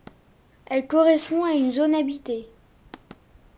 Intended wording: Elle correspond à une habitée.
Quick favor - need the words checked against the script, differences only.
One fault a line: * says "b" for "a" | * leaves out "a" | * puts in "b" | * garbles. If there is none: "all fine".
* puts in "zone"